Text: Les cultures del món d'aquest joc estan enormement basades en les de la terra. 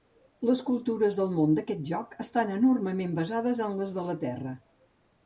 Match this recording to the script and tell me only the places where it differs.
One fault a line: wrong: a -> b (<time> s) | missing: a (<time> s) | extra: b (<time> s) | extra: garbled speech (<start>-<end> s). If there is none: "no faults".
no faults